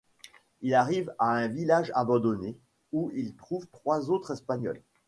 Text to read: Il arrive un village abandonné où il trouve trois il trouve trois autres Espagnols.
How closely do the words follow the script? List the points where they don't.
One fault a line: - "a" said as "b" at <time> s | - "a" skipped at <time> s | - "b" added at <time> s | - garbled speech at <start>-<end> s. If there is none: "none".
- "à" added at 1.2 s
- "il trouve trois" skipped at 4.1 s